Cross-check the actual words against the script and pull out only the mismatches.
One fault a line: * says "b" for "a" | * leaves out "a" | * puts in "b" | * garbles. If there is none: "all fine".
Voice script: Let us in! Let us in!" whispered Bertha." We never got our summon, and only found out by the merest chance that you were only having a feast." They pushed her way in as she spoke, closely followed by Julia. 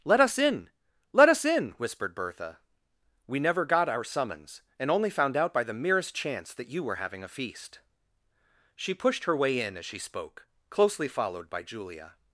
* says "summons" for "summon"
* leaves out "only"
* says "She" for "They"